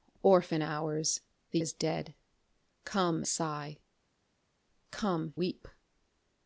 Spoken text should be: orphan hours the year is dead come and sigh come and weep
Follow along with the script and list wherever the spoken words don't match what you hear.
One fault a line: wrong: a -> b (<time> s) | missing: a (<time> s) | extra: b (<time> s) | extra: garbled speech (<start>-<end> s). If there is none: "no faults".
missing: year (1.6 s)
missing: and (3.2 s)
missing: and (5.3 s)